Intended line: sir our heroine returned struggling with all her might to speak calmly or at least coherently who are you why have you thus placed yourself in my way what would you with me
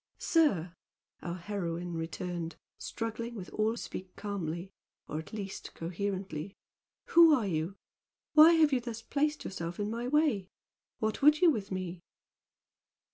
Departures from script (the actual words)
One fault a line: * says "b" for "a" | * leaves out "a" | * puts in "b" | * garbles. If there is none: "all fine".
* leaves out "her might to"